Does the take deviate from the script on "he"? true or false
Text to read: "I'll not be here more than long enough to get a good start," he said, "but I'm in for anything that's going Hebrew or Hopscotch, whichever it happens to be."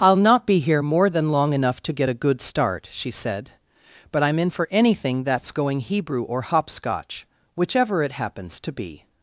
true